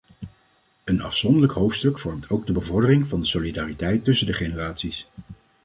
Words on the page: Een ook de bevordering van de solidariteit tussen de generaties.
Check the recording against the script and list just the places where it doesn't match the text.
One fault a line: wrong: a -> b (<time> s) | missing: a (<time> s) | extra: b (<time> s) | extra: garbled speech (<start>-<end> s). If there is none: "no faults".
extra: afzonderlijk hoofdstuk vormt (1.0 s)